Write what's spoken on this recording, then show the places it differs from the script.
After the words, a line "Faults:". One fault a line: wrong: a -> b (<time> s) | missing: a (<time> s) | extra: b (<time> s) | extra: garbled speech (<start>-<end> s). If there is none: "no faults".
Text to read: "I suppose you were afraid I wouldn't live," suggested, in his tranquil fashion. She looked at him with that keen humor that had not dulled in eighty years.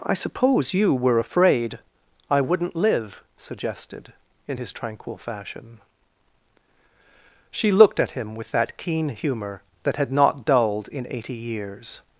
"I suppose you were afraid I wouldn't live," suggested, in his tranquil fashion. She looked at him with that keen humor that had not dulled in eighty years.
Faults:
no faults